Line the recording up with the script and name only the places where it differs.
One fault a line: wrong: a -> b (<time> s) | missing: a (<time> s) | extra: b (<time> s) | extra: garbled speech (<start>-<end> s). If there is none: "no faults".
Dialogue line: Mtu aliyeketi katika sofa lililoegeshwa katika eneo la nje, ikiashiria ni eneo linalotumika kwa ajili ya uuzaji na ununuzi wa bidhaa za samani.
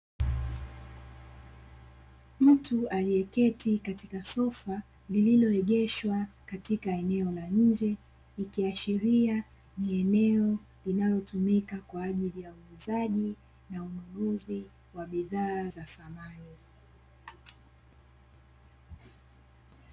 no faults